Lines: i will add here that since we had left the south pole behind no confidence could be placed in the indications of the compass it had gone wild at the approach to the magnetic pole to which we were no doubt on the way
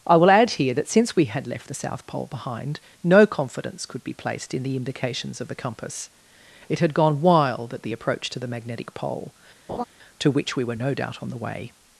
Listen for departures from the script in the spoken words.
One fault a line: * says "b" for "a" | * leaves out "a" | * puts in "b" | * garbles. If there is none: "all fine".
all fine